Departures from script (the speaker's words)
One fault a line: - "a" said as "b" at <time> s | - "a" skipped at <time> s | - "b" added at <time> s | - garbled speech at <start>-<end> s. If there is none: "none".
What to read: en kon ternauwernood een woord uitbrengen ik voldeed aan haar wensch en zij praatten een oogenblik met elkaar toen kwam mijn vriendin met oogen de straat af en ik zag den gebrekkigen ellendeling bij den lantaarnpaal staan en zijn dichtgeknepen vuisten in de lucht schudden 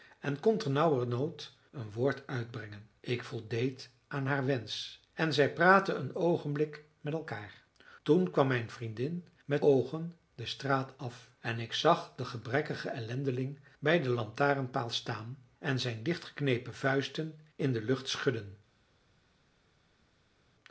none